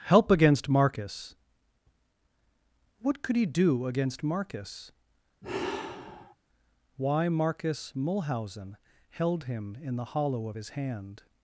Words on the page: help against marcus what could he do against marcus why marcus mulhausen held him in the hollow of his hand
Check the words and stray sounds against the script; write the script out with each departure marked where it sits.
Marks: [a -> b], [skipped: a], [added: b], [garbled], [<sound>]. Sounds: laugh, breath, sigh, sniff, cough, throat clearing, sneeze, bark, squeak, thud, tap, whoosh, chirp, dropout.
help against marcus what could he do against marcus [sigh] why marcus mulhausen held him in the hollow of his hand